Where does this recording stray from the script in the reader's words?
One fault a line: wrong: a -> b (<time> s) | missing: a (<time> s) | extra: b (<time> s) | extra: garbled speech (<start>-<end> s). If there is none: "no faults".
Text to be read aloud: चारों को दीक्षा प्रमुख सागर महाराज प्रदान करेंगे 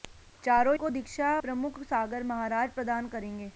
no faults